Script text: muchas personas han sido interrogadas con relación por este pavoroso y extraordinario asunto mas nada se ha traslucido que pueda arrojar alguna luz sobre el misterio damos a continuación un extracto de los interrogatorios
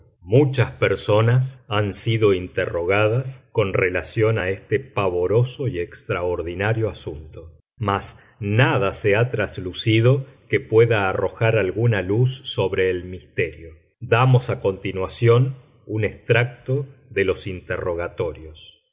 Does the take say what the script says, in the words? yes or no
no